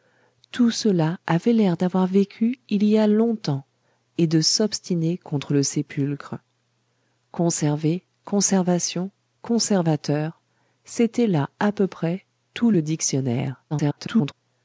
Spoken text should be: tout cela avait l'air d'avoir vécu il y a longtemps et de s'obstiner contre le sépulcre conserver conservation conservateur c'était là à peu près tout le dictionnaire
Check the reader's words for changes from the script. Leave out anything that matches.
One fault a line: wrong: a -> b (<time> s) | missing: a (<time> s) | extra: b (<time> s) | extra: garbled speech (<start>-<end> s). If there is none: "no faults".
extra: garbled speech (13.7-14.3 s)